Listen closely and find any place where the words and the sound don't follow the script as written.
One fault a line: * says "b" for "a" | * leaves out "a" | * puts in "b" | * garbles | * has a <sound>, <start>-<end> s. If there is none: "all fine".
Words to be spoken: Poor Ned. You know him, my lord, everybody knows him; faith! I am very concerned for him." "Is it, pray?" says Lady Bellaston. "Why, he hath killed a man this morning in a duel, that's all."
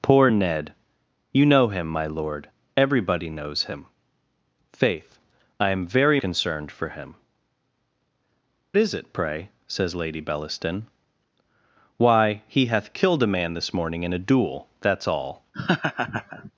* has a laugh, 15.5-16.5 s